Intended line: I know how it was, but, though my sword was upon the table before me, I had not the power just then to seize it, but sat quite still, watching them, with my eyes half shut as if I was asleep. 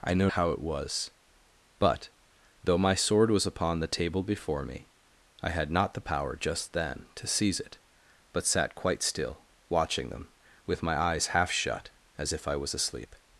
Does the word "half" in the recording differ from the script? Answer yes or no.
no